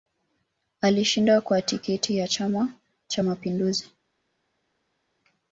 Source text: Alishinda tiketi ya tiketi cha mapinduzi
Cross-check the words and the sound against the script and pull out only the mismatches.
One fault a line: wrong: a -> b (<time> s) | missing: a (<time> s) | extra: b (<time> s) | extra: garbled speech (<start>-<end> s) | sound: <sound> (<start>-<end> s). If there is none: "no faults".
extra: kwa (1.4 s)
wrong: tiketi -> chama (2.3 s)